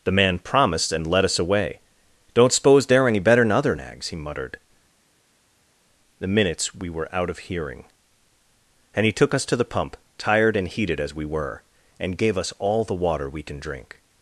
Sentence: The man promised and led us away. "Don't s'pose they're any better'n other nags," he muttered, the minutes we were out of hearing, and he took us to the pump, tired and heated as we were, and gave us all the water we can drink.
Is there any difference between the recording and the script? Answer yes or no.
no